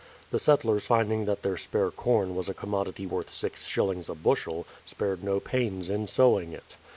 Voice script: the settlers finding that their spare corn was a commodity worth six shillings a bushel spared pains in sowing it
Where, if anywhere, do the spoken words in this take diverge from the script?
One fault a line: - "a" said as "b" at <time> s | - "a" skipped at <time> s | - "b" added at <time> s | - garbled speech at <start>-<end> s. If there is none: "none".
- "no" added at 5.2 s